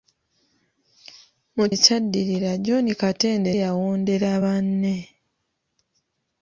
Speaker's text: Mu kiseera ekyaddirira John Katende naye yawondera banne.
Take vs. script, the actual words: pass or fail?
fail